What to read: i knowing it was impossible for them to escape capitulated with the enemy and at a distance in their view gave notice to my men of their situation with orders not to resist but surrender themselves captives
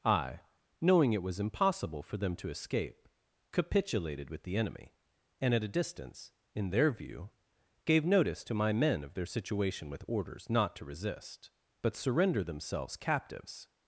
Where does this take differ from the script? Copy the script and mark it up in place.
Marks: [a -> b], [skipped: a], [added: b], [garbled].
i knowing it was impossible for them to escape capitulated with the enemy and at a distance in their view gave notice to my men of their situation with orders not to resist but surrender themselves captives